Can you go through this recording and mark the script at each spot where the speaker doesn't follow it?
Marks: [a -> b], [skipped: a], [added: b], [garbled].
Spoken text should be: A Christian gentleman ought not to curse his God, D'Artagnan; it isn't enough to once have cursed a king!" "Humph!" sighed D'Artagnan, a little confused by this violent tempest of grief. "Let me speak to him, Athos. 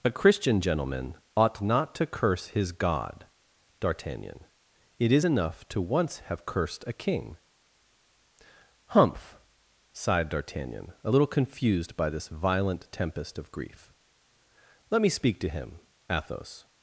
A Christian gentleman ought not to curse his God, D'Artagnan; it [isn't -> is] enough to once have cursed a king!" "Humph!" sighed D'Artagnan, a little confused by this violent tempest of grief. "Let me speak to him, Athos.